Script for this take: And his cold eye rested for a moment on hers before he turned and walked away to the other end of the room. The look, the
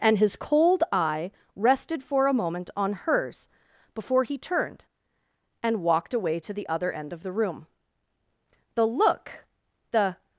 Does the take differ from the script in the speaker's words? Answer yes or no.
no